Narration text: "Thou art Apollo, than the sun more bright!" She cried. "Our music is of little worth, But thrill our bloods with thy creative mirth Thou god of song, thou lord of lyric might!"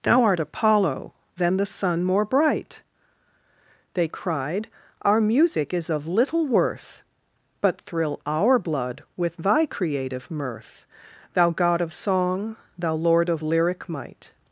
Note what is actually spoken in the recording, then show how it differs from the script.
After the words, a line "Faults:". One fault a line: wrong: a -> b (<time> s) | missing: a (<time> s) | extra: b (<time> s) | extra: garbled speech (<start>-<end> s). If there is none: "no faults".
"Thou art Apollo, than the sun more bright!" They cried. "Our music is of little worth, But thrill our blood with thy creative mirth Thou god of song, thou lord of lyric might!"
Faults:
wrong: She -> They (3.9 s)
wrong: bloods -> blood (8.6 s)